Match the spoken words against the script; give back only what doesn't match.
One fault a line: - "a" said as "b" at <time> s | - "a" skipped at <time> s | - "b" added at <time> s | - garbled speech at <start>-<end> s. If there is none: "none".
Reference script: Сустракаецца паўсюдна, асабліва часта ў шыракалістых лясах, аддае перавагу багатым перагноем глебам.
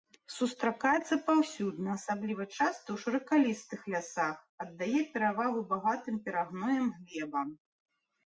none